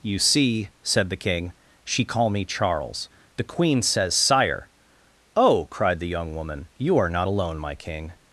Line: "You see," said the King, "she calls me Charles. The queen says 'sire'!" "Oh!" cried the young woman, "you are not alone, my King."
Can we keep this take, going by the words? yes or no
no